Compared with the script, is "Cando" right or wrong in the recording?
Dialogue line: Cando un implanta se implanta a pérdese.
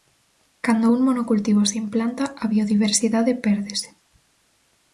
right